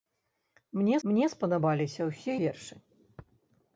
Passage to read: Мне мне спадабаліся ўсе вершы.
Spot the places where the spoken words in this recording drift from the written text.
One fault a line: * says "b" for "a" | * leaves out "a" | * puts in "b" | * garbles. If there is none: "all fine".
all fine